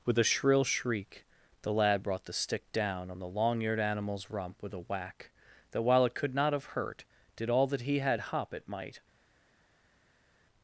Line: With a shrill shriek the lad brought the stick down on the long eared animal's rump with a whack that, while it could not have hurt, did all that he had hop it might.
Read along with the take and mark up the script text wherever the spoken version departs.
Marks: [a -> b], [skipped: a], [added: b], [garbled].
With a shrill shriek the lad brought the stick down on the long eared animal's rump with a whack that, while it could not have hurt, did all that he had hop it might.